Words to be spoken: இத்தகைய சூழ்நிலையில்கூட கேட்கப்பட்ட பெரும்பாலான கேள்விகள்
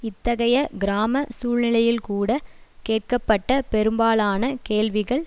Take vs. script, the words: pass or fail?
fail